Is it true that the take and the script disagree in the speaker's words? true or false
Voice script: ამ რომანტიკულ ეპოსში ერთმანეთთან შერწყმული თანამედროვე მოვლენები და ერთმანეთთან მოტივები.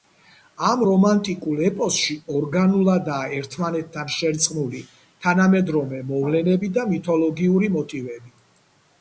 true